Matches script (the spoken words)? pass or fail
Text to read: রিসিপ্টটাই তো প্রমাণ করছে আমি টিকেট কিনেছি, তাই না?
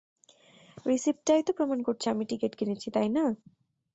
pass